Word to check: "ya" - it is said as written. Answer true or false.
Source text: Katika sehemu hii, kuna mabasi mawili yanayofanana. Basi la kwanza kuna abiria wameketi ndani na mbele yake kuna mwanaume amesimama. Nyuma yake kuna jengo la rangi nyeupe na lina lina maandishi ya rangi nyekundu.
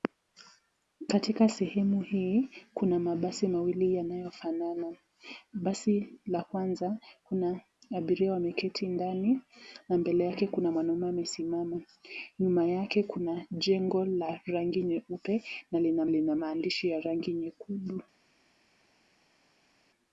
true